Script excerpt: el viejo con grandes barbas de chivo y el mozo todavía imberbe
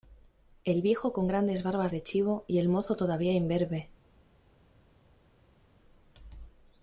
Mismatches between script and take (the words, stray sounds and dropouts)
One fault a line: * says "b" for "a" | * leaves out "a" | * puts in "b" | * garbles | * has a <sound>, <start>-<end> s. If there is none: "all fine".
all fine